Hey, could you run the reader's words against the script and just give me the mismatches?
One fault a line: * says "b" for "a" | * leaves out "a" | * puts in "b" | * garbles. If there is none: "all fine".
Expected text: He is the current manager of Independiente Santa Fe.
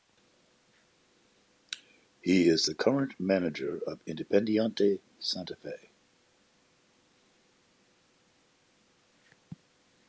all fine